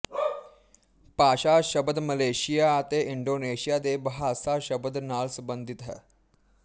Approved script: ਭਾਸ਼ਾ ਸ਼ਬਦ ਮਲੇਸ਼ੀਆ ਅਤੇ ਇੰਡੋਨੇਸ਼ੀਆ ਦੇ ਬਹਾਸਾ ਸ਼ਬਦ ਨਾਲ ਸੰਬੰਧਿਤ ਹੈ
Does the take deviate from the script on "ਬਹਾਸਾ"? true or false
false